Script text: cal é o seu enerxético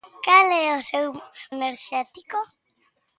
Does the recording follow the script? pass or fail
pass